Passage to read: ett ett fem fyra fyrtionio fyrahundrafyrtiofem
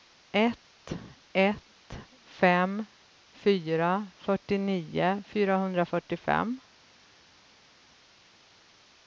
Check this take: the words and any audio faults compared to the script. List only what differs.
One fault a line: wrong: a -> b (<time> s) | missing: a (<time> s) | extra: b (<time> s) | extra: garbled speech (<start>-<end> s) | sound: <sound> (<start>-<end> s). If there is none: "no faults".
no faults